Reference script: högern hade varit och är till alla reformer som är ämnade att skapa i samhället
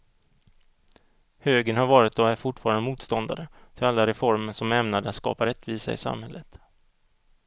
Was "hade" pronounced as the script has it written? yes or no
no